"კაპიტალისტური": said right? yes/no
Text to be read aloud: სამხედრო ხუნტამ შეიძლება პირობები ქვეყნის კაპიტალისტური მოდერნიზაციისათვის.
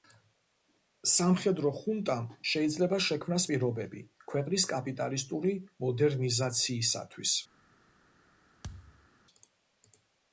yes